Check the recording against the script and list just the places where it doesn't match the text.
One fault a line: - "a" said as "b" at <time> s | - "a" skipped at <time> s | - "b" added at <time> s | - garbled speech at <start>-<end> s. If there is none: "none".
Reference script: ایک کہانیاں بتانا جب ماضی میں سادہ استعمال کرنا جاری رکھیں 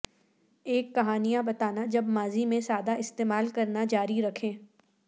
none